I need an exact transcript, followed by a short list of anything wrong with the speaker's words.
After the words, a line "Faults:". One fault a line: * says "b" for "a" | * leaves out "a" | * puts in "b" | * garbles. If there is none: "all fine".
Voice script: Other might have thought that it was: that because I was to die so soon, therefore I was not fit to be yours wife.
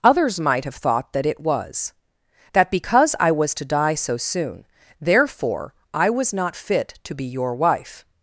Others might have thought that it was: that because I was to die so soon, therefore I was not fit to be your wife.
Faults:
* says "Others" for "Other"
* says "your" for "yours"